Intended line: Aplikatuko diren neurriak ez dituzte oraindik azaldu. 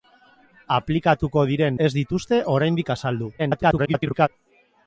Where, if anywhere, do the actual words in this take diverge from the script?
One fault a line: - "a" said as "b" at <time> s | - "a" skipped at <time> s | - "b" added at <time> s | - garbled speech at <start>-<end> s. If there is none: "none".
- "neurriak" skipped at 1.8 s
- garbled speech at 3.4-4.3 s